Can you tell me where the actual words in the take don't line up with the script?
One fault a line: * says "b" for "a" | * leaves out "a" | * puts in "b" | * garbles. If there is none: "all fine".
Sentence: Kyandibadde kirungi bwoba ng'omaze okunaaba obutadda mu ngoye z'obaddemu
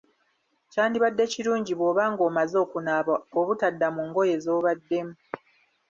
all fine